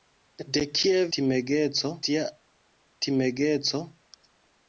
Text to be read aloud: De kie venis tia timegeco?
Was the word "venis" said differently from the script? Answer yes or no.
yes